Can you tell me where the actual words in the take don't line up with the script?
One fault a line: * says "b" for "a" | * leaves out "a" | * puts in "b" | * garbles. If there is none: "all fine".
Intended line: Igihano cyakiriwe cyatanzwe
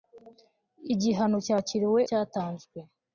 all fine